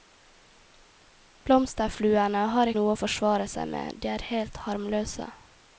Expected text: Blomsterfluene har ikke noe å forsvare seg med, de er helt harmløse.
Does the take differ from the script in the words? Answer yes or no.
yes